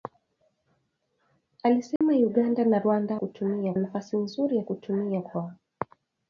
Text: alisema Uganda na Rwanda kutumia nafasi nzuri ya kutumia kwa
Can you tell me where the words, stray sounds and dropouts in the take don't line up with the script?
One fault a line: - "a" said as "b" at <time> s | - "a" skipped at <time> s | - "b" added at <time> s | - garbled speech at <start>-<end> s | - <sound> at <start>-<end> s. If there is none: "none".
- dropout at 2.0-2.0 s